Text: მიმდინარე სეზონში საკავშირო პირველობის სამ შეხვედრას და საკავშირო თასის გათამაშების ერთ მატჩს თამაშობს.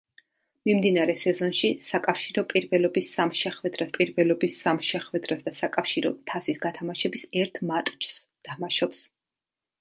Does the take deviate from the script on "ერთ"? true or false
false